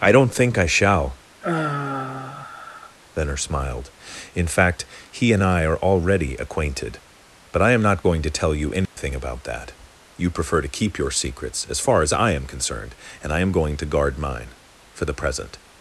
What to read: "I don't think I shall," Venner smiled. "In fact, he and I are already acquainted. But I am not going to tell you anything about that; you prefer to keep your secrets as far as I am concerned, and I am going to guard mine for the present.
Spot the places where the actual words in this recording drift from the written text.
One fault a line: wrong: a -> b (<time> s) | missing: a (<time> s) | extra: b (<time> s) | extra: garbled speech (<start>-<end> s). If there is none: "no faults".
no faults